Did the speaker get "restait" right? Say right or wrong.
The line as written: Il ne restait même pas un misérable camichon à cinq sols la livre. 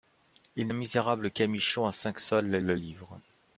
wrong